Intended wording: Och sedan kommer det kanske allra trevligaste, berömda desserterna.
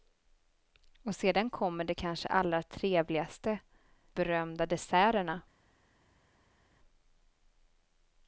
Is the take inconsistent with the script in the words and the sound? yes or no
no